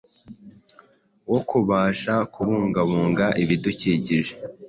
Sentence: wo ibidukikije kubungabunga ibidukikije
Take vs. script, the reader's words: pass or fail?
fail